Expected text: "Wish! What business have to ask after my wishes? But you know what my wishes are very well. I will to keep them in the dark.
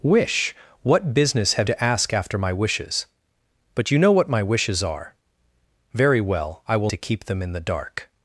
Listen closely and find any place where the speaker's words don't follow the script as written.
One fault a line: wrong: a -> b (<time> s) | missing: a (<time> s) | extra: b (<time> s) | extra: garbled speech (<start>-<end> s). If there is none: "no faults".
no faults